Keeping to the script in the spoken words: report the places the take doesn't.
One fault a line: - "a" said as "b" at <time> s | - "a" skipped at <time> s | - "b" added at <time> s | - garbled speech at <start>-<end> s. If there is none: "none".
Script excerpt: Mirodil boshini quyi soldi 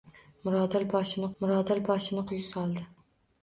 - "mirodil boshini" added at 1.4 s